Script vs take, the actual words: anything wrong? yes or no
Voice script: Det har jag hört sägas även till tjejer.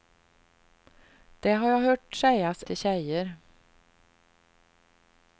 yes